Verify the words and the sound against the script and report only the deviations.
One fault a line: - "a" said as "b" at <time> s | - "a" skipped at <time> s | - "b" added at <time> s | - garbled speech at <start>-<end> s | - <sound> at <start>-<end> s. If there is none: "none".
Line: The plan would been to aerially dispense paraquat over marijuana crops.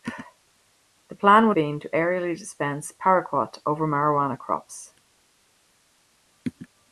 none